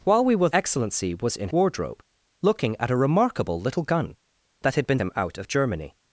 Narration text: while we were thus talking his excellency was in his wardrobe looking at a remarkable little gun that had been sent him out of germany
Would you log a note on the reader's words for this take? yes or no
yes